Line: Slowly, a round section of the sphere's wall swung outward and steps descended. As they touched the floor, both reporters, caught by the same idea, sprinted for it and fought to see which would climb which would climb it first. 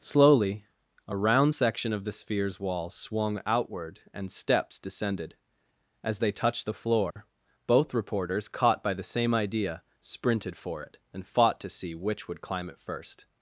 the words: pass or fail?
fail